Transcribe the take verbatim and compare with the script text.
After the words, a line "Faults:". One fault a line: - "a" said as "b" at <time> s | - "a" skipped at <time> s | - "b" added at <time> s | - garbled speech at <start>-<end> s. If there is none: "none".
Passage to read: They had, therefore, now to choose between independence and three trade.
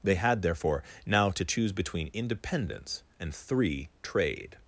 They had, therefore, now to choose between independence and three trade.
Faults:
none